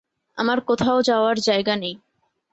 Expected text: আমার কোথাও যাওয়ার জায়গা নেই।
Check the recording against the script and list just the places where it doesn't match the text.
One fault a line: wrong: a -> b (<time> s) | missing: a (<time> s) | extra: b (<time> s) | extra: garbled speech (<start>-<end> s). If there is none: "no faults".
no faults